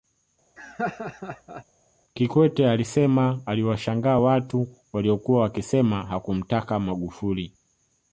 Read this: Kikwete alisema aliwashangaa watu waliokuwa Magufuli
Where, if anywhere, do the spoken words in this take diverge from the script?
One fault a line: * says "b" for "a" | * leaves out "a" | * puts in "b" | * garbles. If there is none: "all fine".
* puts in "wakisema hakumtaka"